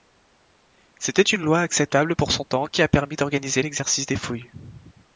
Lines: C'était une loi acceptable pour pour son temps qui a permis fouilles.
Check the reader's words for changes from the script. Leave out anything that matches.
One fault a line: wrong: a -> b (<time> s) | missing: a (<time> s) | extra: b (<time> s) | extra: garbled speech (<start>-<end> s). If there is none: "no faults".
missing: pour (2.3 s)
extra: d'organiser l'exercice des (3.2 s)